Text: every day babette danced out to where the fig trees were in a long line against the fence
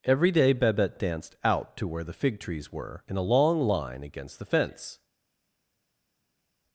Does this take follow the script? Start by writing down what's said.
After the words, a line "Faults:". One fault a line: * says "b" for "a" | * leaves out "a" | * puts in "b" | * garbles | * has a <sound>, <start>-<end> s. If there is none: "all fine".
every day babette danced out to where the fig trees were in a long line against the fence
Faults:
all fine